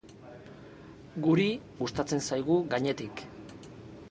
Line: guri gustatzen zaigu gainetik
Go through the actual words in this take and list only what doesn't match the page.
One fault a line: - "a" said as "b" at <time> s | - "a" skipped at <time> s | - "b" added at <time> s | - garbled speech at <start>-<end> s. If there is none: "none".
none